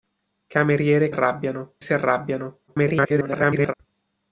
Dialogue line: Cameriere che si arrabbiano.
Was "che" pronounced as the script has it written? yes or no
no